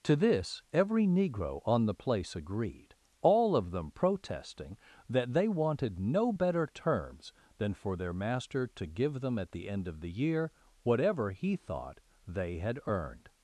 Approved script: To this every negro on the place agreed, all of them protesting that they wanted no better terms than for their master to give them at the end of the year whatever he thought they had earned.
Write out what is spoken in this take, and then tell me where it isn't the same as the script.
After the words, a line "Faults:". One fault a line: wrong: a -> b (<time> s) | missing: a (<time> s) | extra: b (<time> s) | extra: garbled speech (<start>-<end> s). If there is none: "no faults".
To this every negro on the place agreed, all of them protesting that they wanted no better terms than for their master to give them at the end of the year whatever he thought they had earned.
Faults:
no faults